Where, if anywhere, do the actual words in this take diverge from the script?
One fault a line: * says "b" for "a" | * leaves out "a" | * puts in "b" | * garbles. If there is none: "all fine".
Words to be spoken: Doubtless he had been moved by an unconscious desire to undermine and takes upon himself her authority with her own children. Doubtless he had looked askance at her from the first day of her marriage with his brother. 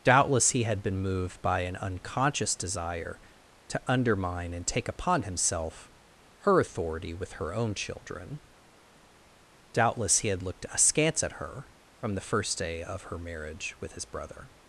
* says "take" for "takes"